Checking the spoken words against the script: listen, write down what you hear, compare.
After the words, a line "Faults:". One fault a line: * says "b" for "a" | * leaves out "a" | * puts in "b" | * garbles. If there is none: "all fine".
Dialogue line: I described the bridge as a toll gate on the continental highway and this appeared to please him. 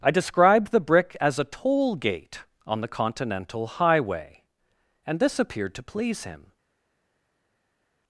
I described the brick as a toll gate on the continental highway and this appeared to please him.
Faults:
* says "brick" for "bridge"